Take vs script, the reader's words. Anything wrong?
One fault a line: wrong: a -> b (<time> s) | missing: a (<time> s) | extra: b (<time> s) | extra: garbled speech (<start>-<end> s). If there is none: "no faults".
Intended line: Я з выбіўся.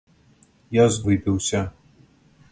no faults